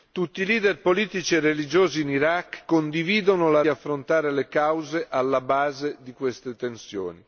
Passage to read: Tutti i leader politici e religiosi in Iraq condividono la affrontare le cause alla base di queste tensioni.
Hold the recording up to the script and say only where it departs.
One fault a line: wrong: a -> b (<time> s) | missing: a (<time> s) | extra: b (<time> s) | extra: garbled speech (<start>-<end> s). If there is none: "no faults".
no faults